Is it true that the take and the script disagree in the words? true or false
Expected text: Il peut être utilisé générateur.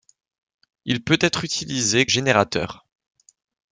false